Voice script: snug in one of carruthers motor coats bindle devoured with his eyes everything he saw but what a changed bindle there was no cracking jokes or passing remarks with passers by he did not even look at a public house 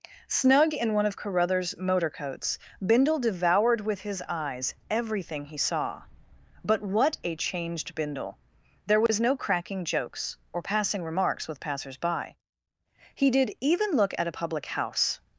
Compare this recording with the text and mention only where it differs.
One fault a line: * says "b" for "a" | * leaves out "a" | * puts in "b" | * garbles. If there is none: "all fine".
* leaves out "not"